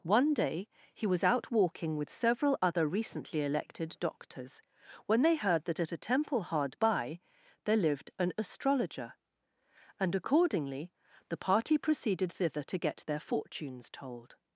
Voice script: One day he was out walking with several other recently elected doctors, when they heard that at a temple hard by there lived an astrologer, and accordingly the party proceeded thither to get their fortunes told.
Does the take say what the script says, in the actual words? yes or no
yes